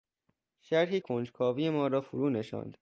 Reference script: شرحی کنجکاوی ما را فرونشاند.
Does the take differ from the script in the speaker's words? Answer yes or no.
no